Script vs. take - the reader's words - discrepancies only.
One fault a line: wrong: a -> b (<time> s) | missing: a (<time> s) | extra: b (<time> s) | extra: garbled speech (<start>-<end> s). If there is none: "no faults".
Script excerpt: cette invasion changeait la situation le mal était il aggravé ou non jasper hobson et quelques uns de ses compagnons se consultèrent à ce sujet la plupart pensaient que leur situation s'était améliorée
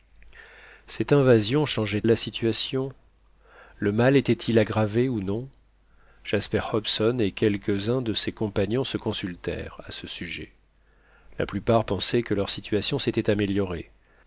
no faults